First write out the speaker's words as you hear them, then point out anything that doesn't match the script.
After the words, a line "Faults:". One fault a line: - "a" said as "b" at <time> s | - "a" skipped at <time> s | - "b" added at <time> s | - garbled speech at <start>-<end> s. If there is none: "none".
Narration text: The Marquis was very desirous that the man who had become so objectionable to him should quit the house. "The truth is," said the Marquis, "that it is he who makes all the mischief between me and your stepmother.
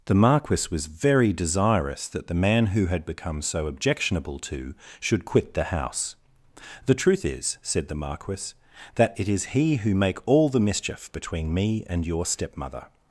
The Marquis was very desirous that the man who had become so objectionable to should quit the house. "The truth is," said the Marquis, "that it is he who make all the mischief between me and your stepmother.
Faults:
- "him" skipped at 4.7 s
- "makes" said as "make" at 9.9 s